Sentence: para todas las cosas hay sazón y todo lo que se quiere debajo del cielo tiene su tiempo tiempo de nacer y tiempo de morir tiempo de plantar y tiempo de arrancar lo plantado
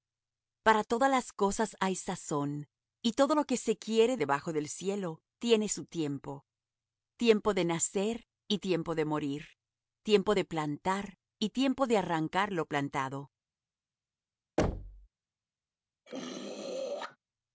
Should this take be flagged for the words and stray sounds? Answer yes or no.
yes